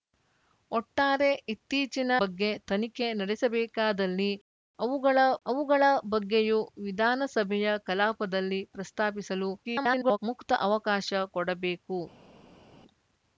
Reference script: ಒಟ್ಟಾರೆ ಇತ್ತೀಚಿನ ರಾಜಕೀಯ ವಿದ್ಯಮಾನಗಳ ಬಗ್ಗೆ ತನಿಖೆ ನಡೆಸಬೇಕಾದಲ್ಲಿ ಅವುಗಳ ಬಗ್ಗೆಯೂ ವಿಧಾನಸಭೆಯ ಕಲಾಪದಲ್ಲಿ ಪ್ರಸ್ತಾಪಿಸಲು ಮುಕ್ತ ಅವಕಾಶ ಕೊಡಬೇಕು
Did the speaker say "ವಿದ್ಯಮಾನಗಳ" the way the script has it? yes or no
no